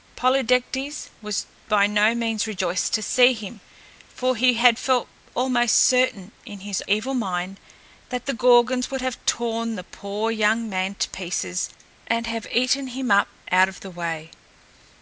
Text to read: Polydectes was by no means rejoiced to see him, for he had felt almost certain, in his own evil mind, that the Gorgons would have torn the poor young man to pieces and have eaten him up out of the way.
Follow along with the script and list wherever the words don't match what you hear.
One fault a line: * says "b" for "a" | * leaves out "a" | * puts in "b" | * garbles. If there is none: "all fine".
* leaves out "own"